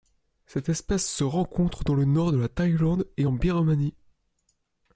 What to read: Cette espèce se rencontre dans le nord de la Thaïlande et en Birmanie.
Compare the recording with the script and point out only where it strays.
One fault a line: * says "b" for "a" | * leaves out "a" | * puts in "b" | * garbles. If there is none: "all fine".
all fine